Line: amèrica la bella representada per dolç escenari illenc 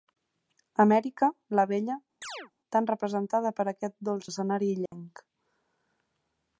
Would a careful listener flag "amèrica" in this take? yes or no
no